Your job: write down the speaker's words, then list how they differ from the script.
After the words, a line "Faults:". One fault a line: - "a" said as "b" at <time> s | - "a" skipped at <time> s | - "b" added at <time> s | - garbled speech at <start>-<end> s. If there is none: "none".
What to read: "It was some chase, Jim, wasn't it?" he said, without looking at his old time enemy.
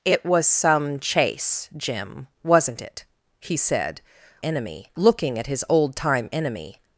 "It was some chase, Jim, wasn't it?" he said, enemy looking at his old time enemy.
Faults:
- "without" said as "enemy" at 4.4 s